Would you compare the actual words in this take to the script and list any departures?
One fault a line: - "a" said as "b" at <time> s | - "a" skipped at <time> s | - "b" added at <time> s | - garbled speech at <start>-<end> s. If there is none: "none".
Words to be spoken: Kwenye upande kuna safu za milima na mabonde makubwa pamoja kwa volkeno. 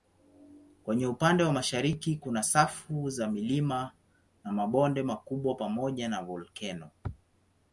- "wa mashariki" added at 1.4 s
- "kwa" said as "na" at 6.1 s